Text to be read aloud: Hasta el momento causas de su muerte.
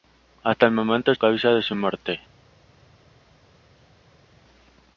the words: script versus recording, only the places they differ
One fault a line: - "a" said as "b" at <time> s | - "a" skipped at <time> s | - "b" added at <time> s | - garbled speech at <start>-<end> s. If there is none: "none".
none